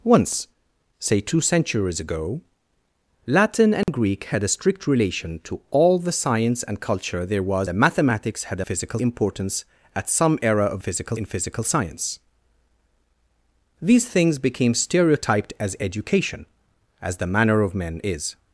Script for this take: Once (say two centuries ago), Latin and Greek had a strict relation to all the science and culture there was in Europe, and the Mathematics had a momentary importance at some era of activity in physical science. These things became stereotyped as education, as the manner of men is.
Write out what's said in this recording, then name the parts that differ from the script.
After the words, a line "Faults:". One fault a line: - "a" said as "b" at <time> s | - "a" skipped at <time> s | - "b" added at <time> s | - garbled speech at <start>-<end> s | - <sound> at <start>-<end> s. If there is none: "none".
Once (say two centuries ago), Latin and Greek had a strict relation to all the science and culture there was the Mathematics had a physical importance at some era of physical in physical science. These things became stereotyped as education, as the manner of men is.
Faults:
- dropout at 3.8-3.9 s
- "in Europe and" skipped at 7.7 s
- "momentary" said as "physical" at 8.6 s
- "activity" said as "physical" at 10.8 s